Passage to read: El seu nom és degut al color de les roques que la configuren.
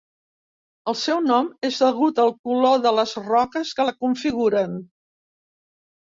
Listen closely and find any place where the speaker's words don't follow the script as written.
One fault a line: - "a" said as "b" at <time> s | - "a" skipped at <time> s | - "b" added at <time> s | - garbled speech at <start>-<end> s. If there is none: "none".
none